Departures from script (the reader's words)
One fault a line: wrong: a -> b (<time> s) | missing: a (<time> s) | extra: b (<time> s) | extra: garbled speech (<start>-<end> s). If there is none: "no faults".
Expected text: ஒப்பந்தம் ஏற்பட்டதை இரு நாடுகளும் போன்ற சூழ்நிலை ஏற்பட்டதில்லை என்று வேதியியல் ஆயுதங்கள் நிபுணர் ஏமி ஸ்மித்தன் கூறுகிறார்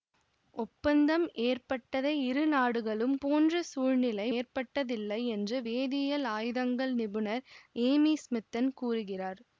no faults